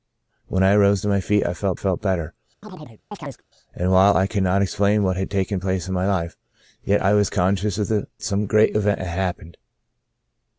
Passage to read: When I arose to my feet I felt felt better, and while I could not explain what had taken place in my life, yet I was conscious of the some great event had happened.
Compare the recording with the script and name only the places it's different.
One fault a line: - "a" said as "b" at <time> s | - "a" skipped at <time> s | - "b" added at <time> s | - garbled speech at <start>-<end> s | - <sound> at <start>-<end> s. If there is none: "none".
- chirp at 2.6-3.4 s